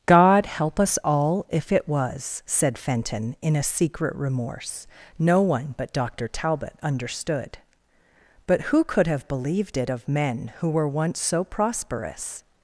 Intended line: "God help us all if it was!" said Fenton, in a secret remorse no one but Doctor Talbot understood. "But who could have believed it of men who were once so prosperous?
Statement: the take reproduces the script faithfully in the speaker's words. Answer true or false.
true